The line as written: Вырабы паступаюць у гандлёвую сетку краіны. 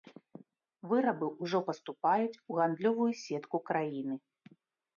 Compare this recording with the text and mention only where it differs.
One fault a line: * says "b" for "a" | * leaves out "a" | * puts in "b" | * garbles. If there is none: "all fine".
* puts in "ўжо"